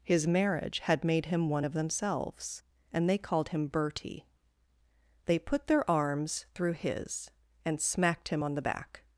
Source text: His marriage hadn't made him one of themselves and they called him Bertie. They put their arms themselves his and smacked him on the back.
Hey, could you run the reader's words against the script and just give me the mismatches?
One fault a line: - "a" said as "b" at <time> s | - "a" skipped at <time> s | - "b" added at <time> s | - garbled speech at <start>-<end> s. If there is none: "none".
- "hadn't" said as "had" at 0.8 s
- "themselves" said as "through" at 6.6 s